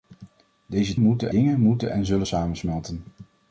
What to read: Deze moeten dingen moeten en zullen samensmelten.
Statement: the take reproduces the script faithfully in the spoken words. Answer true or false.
true